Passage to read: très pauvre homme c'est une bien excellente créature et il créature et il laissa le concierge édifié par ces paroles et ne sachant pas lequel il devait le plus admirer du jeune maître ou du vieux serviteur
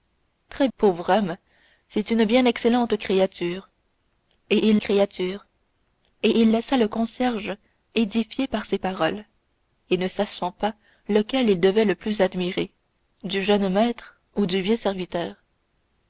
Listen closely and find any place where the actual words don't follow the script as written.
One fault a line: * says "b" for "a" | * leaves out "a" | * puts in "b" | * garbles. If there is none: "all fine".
all fine